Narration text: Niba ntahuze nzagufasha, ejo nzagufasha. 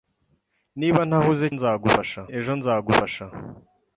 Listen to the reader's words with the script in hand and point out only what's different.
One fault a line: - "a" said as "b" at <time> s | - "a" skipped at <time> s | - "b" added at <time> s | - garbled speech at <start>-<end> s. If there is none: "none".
none